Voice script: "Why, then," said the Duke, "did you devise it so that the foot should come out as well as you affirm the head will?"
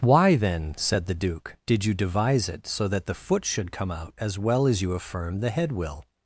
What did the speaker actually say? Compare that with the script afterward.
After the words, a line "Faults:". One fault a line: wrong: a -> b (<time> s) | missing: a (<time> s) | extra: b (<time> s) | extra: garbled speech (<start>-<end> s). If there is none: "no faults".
"Why, then," said the Duke, "did you devise it so that the foot should come out as well as you affirm the head will?"
Faults:
no faults